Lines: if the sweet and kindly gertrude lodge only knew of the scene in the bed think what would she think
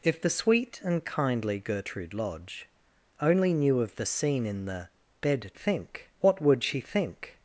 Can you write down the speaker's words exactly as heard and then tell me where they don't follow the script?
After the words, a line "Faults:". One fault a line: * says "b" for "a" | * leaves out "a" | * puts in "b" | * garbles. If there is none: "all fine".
if the sweet and kindly gertrude lodge only knew of the scene in the bed think what would she think
Faults:
all fine